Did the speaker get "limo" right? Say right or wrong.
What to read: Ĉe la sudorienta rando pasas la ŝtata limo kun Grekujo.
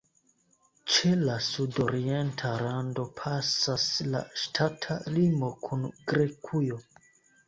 right